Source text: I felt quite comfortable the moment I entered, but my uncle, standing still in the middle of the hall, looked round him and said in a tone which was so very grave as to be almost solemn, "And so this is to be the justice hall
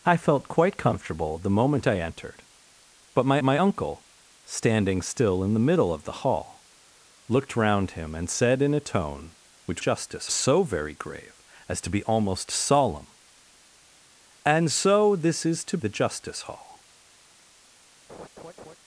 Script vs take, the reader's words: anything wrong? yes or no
yes